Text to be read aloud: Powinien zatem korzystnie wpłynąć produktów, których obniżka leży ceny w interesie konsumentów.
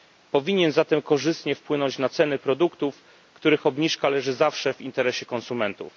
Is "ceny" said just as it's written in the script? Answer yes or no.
no